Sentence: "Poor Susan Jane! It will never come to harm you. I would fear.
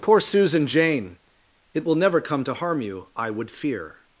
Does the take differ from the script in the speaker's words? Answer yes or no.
no